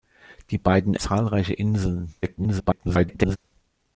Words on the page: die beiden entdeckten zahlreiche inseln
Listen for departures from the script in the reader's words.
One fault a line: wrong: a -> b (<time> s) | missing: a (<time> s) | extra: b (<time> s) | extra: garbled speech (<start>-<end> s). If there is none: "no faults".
missing: entdeckten (0.9 s)
extra: garbled speech (2.2-3.4 s)